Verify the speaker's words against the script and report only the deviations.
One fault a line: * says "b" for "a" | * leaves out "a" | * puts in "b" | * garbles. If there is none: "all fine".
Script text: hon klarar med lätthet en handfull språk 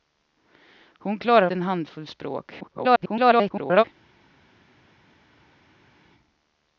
* leaves out "med lätthet"
* garbles